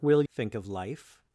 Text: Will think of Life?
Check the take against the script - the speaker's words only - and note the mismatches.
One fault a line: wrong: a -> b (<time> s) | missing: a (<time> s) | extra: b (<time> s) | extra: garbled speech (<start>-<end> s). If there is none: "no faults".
no faults